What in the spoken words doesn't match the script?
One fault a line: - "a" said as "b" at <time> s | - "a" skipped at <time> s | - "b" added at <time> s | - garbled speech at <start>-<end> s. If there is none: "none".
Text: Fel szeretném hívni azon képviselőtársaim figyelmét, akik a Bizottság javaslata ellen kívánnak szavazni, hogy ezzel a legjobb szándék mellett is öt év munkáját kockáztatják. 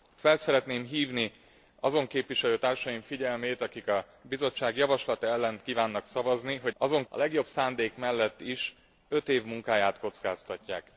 - "ezzel" said as "azon" at 6.8 s